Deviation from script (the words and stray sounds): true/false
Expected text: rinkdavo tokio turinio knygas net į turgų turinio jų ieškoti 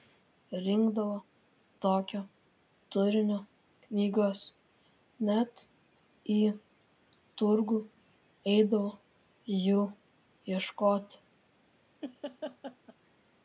true